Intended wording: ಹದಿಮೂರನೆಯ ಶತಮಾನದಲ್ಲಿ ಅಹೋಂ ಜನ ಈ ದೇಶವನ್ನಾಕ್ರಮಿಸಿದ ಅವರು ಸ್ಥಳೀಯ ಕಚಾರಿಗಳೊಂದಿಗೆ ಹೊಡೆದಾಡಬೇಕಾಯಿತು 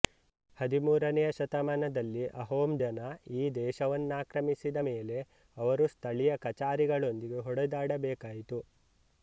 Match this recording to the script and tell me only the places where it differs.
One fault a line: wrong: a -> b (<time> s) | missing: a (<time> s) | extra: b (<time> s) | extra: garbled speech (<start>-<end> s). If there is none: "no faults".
extra: ಮೇಲೆ (4.9 s)